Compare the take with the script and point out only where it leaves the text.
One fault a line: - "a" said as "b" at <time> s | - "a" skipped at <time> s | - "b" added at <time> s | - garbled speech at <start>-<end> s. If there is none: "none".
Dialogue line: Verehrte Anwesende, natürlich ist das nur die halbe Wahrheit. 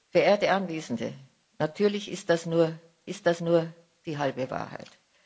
- "ist das nur" added at 3.1 s